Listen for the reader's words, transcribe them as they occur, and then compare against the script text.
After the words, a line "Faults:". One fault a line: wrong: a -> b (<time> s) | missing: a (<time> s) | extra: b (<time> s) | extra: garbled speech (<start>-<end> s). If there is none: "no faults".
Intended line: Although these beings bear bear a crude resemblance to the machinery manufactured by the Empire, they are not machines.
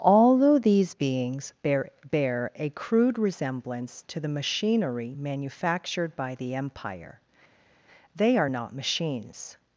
Although these beings bear bear a crude resemblance to the machinery manufactured by the Empire, they are not machines.
Faults:
no faults